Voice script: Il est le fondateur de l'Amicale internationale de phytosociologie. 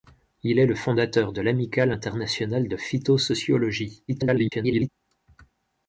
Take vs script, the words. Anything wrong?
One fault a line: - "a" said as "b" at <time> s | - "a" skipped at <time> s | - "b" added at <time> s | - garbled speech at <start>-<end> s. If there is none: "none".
- garbled speech at 4.1-4.9 s